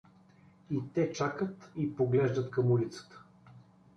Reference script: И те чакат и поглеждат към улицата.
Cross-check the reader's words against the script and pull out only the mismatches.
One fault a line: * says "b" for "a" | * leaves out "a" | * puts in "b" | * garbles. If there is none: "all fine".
all fine